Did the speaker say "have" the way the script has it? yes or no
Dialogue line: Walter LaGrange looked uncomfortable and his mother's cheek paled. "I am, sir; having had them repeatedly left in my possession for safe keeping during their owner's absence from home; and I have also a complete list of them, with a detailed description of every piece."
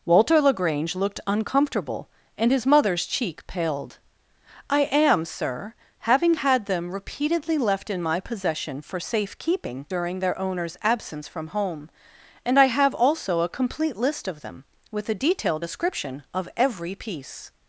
yes